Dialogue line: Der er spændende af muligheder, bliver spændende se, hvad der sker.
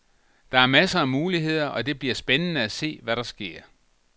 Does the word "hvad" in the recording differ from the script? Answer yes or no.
no